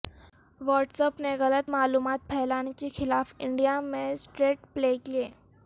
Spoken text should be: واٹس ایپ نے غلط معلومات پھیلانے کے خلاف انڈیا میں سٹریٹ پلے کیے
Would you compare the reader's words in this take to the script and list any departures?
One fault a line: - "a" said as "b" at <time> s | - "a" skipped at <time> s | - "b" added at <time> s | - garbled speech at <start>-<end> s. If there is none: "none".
none